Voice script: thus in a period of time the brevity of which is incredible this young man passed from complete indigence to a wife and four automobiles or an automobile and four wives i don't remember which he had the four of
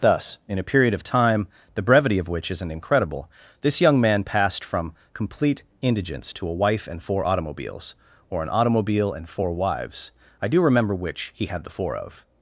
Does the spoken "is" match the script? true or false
false